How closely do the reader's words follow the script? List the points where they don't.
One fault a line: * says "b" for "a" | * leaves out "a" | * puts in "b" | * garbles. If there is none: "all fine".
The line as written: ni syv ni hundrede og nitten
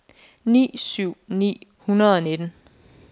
all fine